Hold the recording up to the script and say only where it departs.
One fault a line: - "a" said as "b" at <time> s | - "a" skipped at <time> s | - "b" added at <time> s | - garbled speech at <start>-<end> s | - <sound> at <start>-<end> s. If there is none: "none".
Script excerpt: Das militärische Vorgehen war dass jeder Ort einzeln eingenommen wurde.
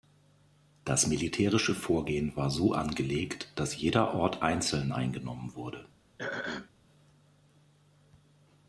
- "so angelegt" added at 2.5 s
- throat clearing at 6.2-6.7 s